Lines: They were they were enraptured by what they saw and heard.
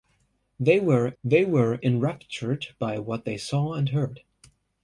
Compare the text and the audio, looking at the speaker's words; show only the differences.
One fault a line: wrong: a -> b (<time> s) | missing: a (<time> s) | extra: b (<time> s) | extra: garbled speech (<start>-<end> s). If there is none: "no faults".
no faults